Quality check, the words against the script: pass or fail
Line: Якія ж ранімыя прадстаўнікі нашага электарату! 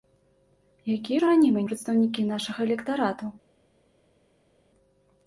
pass